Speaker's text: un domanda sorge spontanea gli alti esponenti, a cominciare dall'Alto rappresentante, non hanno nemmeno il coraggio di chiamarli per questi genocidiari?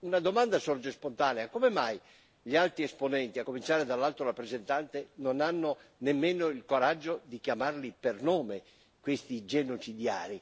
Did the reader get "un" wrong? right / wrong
wrong